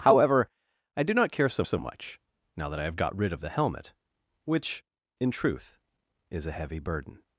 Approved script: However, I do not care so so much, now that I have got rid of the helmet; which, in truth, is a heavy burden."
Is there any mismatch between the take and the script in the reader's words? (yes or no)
no